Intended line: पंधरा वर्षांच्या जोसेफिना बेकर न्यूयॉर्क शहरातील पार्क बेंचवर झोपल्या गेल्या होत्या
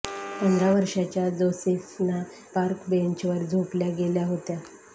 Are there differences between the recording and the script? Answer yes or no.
yes